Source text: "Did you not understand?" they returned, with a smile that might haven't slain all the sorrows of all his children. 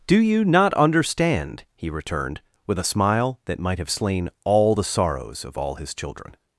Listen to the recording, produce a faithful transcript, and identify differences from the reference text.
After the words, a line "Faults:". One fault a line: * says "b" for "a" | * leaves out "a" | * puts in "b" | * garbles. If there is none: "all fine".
"Do you not understand?" he returned, with a smile that might have slain all the sorrows of all his children.
Faults:
* says "Do" for "Did"
* says "he" for "they"
* says "have" for "haven't"